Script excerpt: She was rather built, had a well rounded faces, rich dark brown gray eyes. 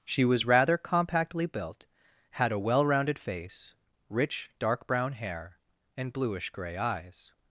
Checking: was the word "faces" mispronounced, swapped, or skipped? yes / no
yes